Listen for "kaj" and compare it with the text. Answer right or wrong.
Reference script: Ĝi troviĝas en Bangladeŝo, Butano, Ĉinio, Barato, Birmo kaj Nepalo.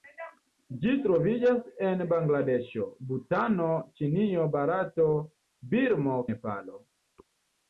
wrong